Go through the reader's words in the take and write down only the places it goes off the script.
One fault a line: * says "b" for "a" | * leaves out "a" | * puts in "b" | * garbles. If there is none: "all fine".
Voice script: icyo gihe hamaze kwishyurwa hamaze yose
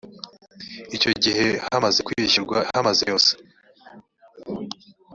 all fine